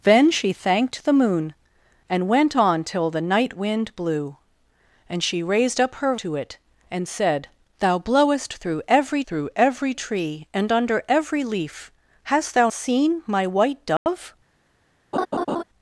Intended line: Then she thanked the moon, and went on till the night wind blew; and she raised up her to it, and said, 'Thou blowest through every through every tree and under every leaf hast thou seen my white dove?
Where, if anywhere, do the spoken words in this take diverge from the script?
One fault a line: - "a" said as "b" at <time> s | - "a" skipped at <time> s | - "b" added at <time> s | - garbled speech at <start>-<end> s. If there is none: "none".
none